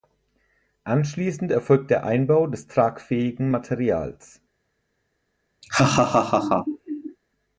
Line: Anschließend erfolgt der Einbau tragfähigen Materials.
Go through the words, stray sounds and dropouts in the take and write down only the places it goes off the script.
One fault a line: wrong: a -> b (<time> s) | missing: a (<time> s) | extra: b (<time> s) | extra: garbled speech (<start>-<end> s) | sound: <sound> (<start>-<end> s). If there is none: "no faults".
extra: des (2.5 s)
sound: laugh (5.6-7.2 s)